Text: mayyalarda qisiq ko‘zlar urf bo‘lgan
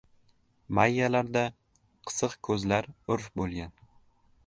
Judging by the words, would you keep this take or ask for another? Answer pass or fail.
pass